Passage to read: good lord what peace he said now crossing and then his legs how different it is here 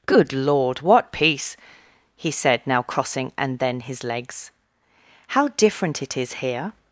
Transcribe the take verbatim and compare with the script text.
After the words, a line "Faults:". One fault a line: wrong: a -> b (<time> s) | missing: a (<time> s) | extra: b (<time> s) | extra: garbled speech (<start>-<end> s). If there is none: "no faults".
good lord what peace he said now crossing and then his legs how different it is here
Faults:
no faults